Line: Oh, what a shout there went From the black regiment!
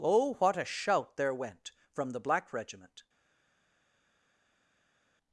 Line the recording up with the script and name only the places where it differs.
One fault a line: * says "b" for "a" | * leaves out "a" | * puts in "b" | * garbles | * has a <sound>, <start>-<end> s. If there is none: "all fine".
all fine